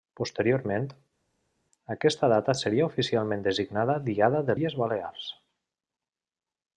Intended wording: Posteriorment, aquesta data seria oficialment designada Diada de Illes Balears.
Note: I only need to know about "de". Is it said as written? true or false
true